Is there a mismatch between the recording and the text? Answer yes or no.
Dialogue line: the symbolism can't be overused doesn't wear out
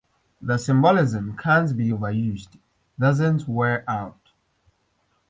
no